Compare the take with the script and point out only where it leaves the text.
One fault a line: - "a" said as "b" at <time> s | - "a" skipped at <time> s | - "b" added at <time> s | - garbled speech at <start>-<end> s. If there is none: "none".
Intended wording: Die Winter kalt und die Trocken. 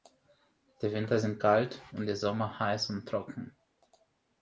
- "sind" added at 1.2 s
- "Sommer heiß und" added at 2.2 s